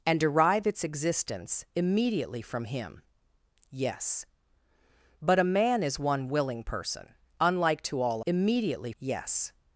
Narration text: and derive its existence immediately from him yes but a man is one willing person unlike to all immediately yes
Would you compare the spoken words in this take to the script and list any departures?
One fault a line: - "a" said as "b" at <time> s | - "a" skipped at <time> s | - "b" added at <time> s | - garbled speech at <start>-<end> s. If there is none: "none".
none